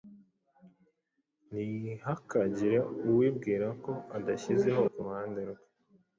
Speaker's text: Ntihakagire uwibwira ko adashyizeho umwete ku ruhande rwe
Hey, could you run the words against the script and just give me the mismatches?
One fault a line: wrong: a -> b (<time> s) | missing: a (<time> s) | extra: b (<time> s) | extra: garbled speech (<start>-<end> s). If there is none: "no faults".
missing: umwete (4.8 s)